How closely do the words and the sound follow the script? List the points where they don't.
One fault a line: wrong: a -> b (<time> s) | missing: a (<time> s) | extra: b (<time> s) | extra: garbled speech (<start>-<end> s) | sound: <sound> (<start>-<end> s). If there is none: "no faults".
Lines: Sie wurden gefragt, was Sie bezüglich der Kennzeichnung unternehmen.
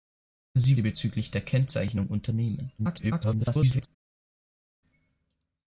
missing: wurden gefragt was (0.8 s)
extra: garbled speech (2.8-3.9 s)